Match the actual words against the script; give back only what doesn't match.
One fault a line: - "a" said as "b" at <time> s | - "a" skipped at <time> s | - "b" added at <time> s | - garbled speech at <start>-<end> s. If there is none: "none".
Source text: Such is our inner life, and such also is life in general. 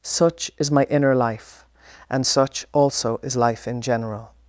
- "our" said as "my" at 0.7 s